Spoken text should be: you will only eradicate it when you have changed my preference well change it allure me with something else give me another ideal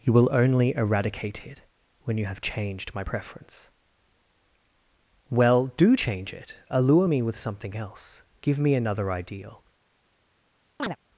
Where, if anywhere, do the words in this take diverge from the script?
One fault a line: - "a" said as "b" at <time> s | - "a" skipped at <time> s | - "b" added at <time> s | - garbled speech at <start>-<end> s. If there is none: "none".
- "do" added at 5.7 s